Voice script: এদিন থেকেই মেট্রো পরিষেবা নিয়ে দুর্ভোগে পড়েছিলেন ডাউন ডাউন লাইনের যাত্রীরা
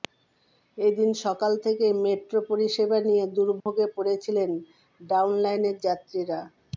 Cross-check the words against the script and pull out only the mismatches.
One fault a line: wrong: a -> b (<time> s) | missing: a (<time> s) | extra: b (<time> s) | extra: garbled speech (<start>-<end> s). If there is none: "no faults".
extra: সকাল (1.2 s)
missing: ডাউন (5.3 s)